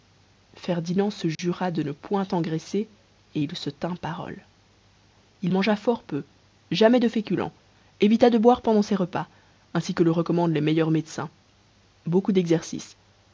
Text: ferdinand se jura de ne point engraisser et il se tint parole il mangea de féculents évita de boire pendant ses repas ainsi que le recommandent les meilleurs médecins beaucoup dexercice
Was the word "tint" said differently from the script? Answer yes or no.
no